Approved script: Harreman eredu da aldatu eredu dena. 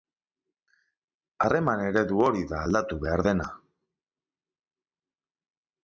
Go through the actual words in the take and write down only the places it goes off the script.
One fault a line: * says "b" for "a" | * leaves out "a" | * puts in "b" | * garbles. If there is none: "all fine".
* puts in "hori"
* says "behar" for "eredu"